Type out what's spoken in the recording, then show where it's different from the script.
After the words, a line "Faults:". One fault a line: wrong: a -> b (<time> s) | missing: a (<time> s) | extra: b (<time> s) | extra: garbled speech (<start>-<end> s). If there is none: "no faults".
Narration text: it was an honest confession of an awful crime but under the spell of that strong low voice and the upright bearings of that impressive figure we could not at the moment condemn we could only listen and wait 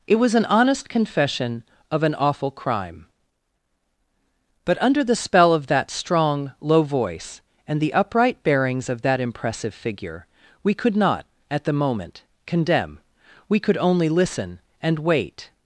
it was an honest confession of an awful crime but under the spell of that strong low voice and the upright bearings of that impressive figure we could not at the moment condemn we could only listen and wait
Faults:
no faults